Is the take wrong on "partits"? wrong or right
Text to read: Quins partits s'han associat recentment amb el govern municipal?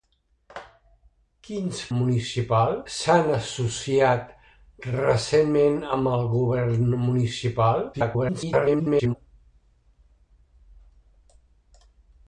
wrong